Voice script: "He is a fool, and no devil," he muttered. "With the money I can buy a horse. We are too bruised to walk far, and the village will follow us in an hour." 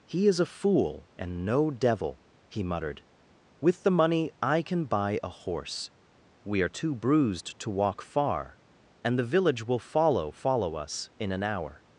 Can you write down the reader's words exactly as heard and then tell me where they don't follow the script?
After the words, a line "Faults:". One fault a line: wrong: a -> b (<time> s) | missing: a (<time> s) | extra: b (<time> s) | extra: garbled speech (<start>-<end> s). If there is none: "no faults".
"He is a fool, and no devil," he muttered. "With the money I can buy a horse. We are too bruised to walk far, and the village will follow follow us in an hour."
Faults:
extra: follow (10.3 s)